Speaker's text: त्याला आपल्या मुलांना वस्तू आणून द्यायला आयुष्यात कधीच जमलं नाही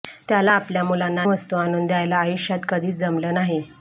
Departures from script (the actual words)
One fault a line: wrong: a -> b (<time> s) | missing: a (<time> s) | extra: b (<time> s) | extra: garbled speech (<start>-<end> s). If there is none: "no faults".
no faults